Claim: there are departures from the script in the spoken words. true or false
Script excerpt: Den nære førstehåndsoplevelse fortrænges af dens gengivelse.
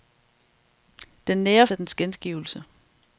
true